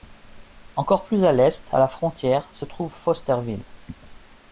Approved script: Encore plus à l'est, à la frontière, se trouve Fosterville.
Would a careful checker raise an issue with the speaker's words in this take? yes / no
no